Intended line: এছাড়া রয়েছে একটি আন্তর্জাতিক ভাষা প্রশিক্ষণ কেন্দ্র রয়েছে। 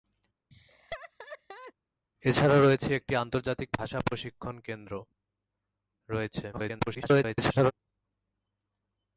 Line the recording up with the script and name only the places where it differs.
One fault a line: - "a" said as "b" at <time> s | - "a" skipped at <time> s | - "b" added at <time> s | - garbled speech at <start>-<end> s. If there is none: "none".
- garbled speech at 6.5-7.7 s